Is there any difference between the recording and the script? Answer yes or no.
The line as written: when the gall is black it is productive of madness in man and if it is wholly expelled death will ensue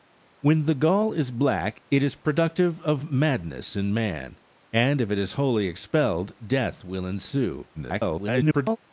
yes